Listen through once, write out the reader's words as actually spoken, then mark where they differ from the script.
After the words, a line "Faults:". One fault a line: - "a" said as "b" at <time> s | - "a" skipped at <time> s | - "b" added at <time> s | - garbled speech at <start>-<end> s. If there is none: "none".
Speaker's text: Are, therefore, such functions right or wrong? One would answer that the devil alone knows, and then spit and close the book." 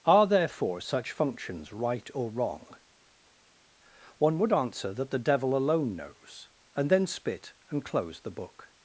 Are, therefore, such functions right or wrong? One would answer that the devil alone knows, and then spit and close the book."
Faults:
none